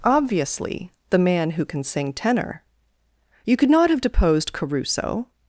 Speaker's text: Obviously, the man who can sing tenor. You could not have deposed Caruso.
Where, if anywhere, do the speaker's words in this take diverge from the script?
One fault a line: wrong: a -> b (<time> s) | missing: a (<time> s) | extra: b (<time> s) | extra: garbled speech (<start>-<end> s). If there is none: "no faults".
no faults